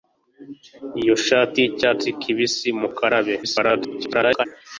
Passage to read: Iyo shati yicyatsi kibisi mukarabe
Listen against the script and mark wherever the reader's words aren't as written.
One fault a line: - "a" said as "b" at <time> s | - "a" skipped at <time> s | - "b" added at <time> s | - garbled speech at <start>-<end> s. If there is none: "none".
- garbled speech at 3.4-4.5 s